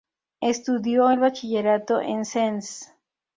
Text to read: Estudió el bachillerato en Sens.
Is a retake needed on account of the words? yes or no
no